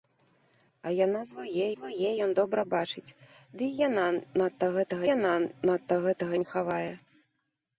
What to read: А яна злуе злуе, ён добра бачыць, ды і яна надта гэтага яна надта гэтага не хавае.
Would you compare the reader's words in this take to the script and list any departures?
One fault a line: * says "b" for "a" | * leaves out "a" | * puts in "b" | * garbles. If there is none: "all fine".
all fine